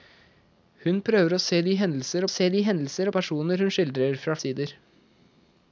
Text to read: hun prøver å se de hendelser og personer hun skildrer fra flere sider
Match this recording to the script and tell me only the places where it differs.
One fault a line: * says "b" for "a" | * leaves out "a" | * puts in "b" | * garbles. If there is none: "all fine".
* puts in "se de hendelser"
* leaves out "flere"